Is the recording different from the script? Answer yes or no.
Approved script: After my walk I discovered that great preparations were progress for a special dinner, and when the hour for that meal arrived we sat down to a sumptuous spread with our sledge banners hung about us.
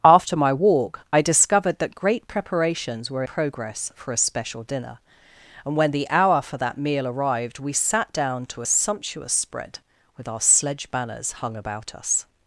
no